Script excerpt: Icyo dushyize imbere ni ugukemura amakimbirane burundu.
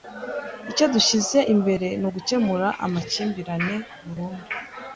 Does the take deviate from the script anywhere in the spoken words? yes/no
no